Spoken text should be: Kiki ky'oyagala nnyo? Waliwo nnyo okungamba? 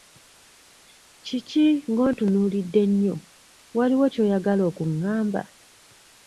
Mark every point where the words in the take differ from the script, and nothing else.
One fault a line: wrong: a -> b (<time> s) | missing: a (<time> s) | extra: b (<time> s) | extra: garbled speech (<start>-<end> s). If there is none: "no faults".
wrong: ky'oyagala -> ng'ontunuulidde (1.9 s)
wrong: nnyo -> ky'oyagala (4.1 s)